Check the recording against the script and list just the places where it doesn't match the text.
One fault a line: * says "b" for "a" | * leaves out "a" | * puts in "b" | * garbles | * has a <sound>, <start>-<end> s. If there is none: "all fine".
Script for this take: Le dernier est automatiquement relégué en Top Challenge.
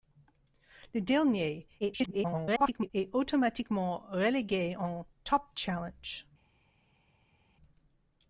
* garbles